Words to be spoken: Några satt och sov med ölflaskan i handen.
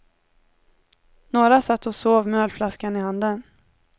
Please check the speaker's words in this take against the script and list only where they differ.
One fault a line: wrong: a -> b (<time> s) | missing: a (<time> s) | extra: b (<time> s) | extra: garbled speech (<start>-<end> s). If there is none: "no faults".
no faults